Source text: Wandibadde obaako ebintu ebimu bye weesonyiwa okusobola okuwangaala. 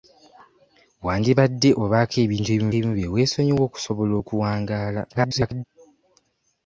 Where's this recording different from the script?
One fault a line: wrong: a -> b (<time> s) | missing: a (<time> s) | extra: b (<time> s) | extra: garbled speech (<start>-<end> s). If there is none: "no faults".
extra: ebimu (2.7 s)
extra: garbled speech (5.1-5.6 s)